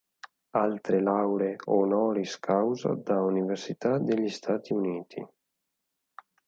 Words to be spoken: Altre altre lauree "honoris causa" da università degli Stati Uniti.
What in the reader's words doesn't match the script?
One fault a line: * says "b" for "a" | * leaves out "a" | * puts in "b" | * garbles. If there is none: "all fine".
* leaves out "altre"